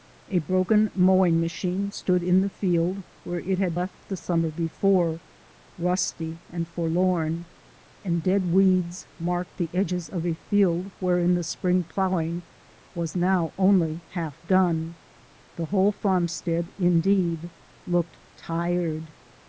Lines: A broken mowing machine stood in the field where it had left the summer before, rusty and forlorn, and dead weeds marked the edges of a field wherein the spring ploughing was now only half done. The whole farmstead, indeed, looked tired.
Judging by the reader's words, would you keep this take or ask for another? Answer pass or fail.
pass